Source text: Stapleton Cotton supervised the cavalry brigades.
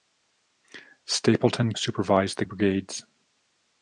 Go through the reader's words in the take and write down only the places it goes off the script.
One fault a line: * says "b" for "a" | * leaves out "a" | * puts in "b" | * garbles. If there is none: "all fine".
* leaves out "Cotton"
* leaves out "cavalry"